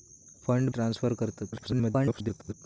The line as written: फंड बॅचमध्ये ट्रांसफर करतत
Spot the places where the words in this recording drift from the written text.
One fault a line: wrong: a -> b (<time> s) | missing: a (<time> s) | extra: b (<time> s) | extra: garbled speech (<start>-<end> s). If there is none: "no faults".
missing: बॅचमध्ये (0.7 s)
extra: garbled speech (1.5-2.5 s)